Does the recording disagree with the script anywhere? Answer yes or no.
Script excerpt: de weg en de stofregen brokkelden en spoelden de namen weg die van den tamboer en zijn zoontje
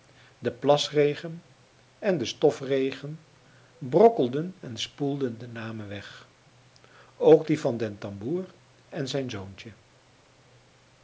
yes